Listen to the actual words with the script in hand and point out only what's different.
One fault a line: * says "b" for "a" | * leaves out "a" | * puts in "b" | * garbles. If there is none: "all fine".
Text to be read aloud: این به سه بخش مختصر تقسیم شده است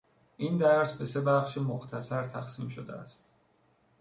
* puts in "درس"